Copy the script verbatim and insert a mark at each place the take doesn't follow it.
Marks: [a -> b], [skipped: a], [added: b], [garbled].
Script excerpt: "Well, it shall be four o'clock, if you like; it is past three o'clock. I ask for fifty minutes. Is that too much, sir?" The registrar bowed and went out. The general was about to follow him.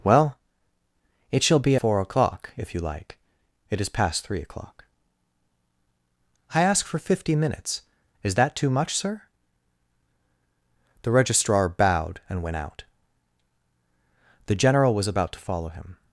"Well, it shall be four o'clock, if you like; it is past three o'clock. I ask for fifty minutes. Is that too much, sir?" The registrar bowed and went out. The general was about to follow him.